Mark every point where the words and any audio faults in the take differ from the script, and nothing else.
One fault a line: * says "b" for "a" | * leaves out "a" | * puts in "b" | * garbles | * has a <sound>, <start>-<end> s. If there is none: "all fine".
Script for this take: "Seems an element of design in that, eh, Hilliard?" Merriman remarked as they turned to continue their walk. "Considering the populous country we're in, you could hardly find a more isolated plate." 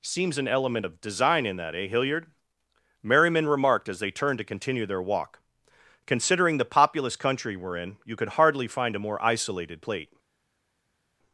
all fine